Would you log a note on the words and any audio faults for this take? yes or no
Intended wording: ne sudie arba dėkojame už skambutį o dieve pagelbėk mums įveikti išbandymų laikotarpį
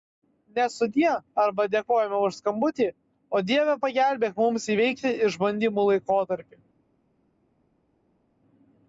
no